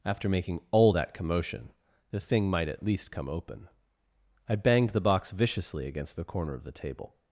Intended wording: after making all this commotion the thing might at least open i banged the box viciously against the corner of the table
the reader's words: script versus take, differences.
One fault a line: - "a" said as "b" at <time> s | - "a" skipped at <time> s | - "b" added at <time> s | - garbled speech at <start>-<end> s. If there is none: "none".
- "this" said as "that" at 0.9 s
- "come" added at 3.1 s